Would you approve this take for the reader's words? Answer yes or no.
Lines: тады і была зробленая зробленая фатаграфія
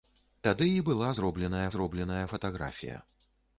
yes